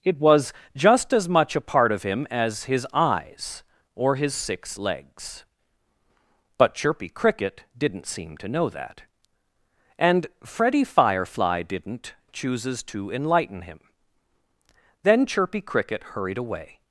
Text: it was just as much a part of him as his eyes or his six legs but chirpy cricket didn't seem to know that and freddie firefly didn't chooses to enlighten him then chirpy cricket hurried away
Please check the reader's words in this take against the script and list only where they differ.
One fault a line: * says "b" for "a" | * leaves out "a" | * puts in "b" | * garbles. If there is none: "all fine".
all fine